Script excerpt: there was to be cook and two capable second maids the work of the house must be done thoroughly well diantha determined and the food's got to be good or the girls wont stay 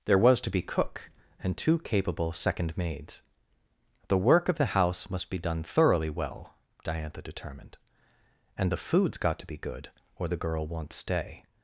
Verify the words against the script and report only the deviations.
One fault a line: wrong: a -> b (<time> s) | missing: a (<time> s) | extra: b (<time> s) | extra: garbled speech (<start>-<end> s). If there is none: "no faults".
wrong: girls -> girl (10.4 s)